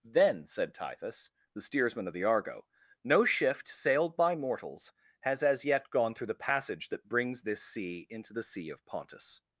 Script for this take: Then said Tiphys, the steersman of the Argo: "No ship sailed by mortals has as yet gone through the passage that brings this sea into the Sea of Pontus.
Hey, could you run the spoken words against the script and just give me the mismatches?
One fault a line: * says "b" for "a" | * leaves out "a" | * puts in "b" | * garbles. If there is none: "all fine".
* says "shift" for "ship"